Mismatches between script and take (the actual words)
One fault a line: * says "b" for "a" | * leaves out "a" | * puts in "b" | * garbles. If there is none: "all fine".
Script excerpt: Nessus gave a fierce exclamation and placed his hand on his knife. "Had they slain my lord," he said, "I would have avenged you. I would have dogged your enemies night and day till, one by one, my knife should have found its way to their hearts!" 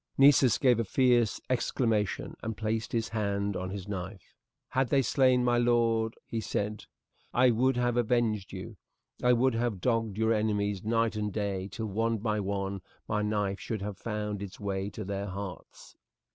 all fine